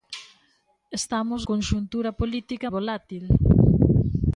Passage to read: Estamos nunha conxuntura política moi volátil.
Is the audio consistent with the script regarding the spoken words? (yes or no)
no